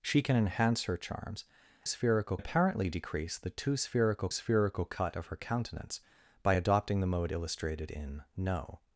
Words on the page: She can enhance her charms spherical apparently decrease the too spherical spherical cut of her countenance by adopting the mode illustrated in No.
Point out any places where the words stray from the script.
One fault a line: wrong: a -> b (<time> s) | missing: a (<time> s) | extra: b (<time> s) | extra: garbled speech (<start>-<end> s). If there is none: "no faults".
no faults